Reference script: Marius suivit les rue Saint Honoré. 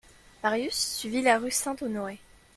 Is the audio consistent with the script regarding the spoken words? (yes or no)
no